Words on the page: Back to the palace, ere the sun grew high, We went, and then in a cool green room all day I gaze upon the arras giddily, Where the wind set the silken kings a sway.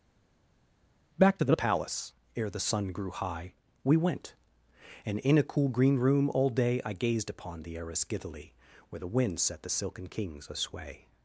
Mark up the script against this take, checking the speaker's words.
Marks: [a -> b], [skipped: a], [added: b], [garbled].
Back to the palace, ere the sun grew high, We went, and [skipped: then] in a cool green room all day I [gaze -> gazed] upon the arras giddily, Where the wind set the silken kings a sway.